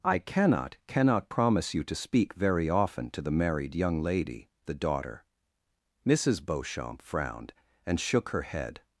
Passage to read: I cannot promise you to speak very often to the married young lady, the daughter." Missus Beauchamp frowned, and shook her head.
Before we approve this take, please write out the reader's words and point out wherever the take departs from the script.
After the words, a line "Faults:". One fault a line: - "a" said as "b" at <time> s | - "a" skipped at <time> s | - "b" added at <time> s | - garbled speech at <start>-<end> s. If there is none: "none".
I cannot cannot promise you to speak very often to the married young lady, the daughter." Missus Beauchamp frowned, and shook her head.
Faults:
- "cannot" added at 0.9 s